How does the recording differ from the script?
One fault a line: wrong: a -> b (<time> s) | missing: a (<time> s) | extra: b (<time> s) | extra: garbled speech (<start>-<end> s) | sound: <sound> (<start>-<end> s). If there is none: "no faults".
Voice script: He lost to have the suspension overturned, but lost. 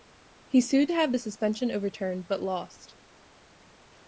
wrong: lost -> sued (0.6 s)